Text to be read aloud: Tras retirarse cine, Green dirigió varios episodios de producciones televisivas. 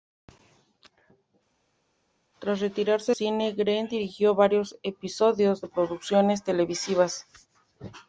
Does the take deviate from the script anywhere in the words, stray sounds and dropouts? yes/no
no